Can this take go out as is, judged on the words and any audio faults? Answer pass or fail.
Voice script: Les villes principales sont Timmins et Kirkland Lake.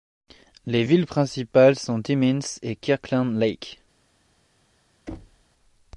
fail